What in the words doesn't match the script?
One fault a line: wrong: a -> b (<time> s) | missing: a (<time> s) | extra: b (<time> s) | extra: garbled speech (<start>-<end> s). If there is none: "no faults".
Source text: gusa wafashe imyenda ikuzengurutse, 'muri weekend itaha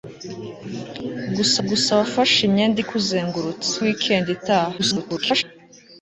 extra: gusa (1.7 s)
missing: muri (3.7 s)
extra: garbled speech (4.8-5.4 s)